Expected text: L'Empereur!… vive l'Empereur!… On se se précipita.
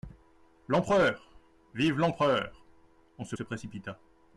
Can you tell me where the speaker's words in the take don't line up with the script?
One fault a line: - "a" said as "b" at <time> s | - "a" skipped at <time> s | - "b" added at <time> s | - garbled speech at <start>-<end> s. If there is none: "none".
none